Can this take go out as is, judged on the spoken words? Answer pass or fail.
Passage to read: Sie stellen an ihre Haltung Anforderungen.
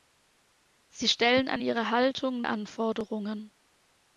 pass